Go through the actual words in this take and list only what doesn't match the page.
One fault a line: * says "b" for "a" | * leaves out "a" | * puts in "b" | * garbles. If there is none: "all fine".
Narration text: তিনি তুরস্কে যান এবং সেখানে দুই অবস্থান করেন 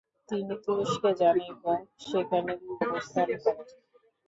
all fine